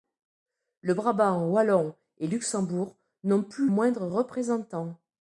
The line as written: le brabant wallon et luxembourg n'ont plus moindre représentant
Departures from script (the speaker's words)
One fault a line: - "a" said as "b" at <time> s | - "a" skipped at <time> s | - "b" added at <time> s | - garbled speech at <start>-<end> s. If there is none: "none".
none